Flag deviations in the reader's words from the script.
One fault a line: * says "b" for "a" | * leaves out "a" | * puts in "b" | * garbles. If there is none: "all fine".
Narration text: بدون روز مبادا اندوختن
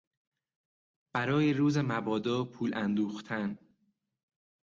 * says "برای" for "بدون"
* puts in "پول"